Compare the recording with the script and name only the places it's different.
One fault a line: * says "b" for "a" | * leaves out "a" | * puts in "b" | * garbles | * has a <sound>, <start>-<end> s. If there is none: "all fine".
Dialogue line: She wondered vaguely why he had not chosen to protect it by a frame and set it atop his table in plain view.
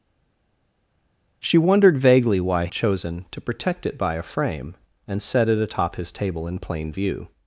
* leaves out "he had not"